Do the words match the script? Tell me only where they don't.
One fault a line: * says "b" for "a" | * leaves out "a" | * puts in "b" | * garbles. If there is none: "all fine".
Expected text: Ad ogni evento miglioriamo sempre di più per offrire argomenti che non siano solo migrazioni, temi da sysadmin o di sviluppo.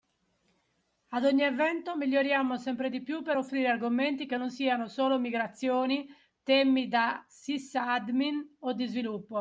all fine